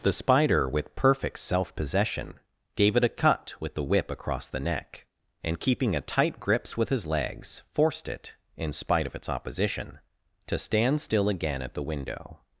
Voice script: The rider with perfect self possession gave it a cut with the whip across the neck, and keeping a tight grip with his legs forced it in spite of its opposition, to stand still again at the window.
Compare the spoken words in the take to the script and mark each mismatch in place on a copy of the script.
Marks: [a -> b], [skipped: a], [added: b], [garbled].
The [rider -> spider] with perfect self possession gave it a cut with the whip across the neck, and keeping a tight [grip -> grips] with his legs forced it in spite of its opposition, to stand still again at the window.